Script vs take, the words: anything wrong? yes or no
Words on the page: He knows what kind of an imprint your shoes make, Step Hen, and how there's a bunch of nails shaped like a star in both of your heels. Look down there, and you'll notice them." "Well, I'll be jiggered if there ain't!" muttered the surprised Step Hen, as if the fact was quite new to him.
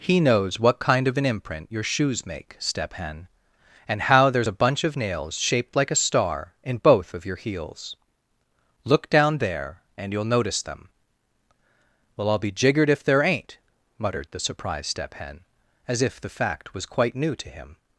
no